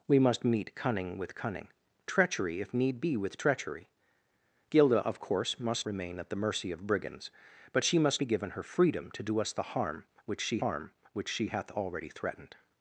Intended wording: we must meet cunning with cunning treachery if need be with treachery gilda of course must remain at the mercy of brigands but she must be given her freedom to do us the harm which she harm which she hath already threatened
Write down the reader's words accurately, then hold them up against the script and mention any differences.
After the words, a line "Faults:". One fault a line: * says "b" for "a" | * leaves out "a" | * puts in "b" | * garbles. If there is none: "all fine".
we must meet cunning with cunning treachery if need be with treachery gilda of course must remain at the mercy of brigands but she must be given her freedom to do us the harm which she harm which she hath already threatened
Faults:
all fine